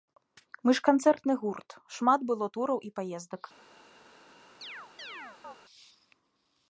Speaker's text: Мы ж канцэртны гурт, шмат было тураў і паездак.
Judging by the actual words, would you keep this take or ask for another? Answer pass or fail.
pass